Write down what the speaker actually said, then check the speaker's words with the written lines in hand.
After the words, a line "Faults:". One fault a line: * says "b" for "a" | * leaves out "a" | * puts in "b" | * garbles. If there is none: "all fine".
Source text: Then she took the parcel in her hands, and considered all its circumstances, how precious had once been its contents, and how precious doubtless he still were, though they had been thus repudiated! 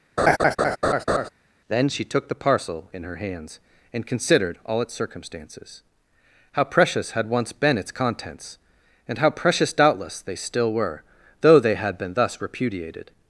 Then she took the parcel in her hands, and considered all its circumstances, how precious had once been its contents, and how precious doubtless they still were, though they had been thus repudiated!
Faults:
* says "they" for "he"